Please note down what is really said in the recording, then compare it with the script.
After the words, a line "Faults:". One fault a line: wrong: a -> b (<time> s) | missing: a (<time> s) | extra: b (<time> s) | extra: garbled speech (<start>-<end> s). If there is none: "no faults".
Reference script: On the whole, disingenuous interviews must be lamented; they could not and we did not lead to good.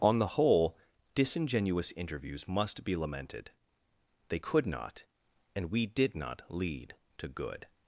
On the whole, disingenuous interviews must be lamented; they could not and we did not lead to good.
Faults:
no faults